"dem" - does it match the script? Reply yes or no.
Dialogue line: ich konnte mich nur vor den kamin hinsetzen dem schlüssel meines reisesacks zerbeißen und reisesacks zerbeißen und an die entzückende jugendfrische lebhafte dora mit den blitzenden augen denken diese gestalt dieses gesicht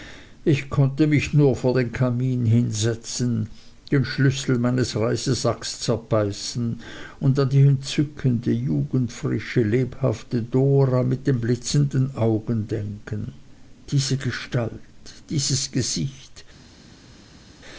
no